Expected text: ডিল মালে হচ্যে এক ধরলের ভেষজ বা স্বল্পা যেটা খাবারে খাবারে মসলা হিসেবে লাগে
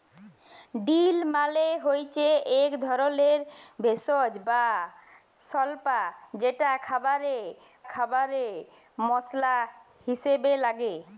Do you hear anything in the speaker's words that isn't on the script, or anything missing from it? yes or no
no